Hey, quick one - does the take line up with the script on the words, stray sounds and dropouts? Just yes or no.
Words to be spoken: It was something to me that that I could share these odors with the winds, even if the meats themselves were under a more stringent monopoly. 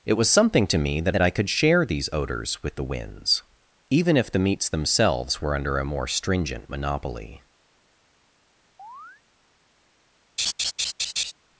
no